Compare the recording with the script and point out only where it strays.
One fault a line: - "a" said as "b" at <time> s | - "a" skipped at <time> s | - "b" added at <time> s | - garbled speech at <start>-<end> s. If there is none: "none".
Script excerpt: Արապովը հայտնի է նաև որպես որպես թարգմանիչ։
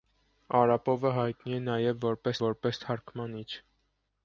none